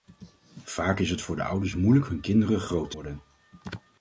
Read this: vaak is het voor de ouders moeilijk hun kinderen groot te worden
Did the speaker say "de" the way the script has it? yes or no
yes